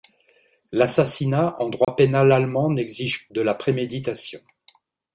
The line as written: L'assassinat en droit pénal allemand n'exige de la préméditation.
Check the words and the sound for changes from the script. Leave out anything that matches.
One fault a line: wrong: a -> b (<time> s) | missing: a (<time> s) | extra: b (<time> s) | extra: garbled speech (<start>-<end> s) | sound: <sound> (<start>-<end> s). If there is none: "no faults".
sound: dropout (1.8-1.9 s)